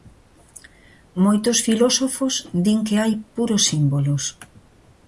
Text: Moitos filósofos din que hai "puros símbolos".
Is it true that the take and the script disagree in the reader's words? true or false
false